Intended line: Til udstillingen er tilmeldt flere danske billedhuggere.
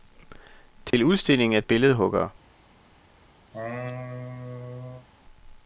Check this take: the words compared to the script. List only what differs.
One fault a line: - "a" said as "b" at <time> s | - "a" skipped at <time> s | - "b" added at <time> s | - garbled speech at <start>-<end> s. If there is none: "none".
- "tilmeldt flere danske" skipped at 1.6 s